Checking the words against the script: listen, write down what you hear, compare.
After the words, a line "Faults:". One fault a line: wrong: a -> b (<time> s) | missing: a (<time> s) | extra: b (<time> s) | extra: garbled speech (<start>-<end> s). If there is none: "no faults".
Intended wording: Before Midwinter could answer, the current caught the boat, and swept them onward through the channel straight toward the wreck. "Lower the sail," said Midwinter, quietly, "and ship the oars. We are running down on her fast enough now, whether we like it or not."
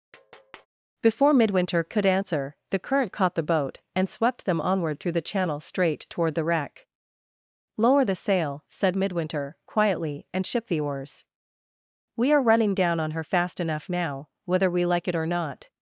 Before Midwinter could answer, the current caught the boat, and swept them onward through the channel straight toward the wreck. "Lower the sail," said Midwinter, quietly, "and ship the oars. We are running down on her fast enough now, whether we like it or not."
Faults:
no faults